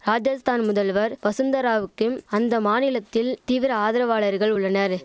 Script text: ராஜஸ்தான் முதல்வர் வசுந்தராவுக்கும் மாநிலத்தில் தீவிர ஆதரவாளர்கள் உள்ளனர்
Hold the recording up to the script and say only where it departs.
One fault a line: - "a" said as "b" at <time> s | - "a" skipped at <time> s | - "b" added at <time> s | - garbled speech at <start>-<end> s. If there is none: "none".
- "அந்த" added at 2.3 s